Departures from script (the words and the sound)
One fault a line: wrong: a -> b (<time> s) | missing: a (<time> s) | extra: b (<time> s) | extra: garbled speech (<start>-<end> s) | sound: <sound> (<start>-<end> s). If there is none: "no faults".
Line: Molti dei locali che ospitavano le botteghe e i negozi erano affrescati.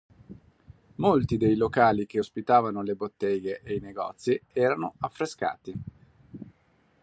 no faults